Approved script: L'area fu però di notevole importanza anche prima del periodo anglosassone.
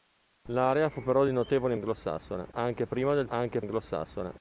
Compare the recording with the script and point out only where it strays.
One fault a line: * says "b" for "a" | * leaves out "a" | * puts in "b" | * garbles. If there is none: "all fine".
* says "anglosassone" for "importanza"
* says "anche" for "periodo"